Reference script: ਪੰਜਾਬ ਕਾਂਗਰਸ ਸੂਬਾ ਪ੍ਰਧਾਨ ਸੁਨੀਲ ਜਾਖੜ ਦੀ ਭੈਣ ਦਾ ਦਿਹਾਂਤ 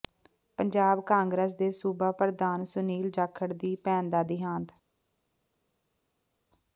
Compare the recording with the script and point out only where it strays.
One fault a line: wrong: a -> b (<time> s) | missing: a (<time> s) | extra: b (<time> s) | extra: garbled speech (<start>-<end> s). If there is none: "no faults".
extra: ਦੇ (1.6 s)